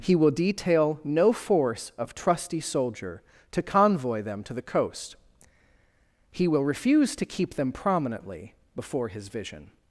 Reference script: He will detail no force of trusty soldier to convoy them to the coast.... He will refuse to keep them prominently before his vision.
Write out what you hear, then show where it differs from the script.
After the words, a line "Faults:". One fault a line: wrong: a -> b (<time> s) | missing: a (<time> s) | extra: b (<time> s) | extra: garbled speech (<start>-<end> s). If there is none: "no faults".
He will detail no force of trusty soldier to convoy them to the coast.... He will refuse to keep them prominently before his vision.
Faults:
no faults